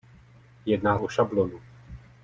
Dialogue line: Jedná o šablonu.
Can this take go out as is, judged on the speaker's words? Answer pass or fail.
pass